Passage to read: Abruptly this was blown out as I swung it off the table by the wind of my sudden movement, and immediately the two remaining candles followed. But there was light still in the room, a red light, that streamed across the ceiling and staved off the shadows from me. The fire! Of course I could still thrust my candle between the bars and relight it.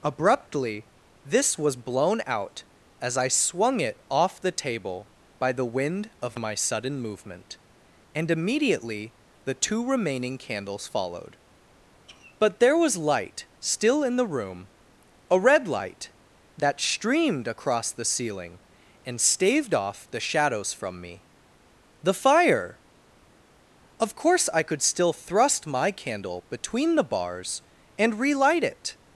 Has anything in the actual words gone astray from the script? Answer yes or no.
no